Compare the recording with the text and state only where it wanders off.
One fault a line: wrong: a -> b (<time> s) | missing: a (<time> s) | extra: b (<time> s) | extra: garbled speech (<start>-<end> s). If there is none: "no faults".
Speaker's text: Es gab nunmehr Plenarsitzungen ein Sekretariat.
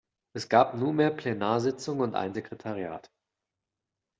extra: und (2.0 s)